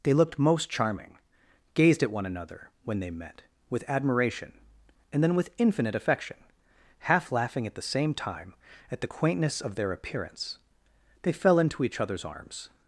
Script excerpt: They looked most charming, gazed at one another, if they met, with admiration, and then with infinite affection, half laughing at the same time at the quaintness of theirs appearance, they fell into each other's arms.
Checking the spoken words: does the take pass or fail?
fail